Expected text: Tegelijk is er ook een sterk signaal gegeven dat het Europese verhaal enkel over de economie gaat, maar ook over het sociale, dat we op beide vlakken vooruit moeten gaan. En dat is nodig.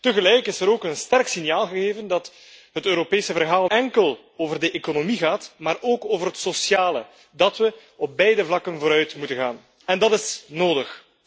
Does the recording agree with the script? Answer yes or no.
yes